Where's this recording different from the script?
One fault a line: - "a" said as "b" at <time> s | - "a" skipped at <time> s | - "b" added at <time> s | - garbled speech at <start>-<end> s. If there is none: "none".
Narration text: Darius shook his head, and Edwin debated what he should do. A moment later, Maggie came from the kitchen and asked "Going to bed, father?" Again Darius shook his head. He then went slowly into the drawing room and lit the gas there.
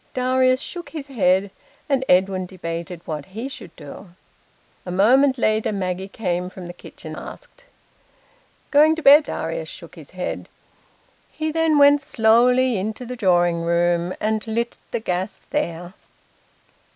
- "and" skipped at 7.2 s
- "father Again" skipped at 9.3 s